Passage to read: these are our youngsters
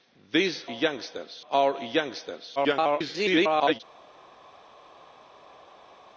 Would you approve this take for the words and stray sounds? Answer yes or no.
no